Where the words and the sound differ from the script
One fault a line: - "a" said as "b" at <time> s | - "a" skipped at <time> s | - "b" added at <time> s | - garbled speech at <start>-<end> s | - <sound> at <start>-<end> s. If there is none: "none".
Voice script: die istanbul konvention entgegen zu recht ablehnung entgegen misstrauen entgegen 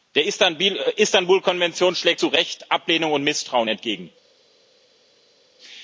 - "die" said as "der" at 0.1 s
- "entgegen" said as "schlägt" at 1.9 s
- "entgegen" said as "und" at 3.1 s